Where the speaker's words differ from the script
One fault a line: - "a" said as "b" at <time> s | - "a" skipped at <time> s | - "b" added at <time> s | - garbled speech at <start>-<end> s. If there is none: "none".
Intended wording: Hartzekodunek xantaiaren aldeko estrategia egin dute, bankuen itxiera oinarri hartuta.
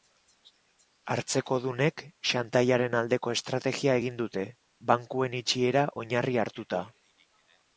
none